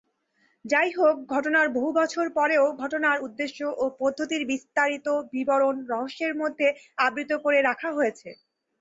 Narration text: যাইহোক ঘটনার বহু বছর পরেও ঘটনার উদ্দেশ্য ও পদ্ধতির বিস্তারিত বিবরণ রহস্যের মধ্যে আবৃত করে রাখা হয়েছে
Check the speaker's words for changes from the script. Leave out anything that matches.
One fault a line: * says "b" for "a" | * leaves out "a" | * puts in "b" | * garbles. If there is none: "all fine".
all fine